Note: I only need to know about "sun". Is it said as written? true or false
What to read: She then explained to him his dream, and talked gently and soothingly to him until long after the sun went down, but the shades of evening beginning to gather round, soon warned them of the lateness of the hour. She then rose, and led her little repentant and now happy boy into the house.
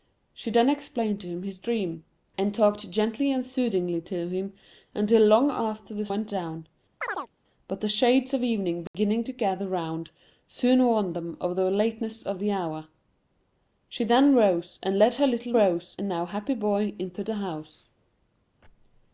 false